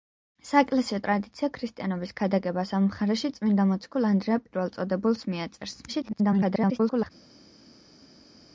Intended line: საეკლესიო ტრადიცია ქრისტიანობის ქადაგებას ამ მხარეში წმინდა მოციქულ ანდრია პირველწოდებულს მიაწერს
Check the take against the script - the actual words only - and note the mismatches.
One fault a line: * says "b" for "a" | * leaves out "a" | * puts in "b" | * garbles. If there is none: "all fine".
* garbles